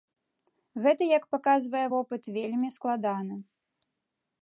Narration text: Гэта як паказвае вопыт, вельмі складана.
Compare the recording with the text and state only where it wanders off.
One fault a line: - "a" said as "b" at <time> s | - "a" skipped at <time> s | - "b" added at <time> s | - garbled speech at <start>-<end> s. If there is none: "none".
none